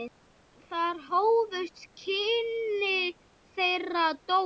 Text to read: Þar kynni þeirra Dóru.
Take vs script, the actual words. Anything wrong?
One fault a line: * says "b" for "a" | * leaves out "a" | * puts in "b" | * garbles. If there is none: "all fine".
* puts in "hófust"